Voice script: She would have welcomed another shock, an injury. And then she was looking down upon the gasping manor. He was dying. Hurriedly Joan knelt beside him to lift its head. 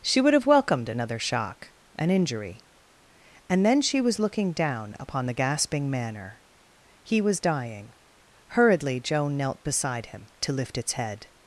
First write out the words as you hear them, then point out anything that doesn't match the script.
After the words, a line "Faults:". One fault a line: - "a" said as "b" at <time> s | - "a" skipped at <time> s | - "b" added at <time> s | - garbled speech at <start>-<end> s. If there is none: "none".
She would have welcomed another shock, an injury. And then she was looking down upon the gasping manor. He was dying. Hurriedly Joan knelt beside him to lift its head.
Faults:
none